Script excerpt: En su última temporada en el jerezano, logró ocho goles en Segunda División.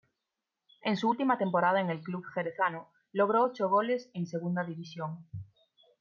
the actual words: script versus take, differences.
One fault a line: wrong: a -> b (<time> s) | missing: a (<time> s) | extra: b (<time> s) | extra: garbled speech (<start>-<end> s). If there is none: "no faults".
extra: club (2.0 s)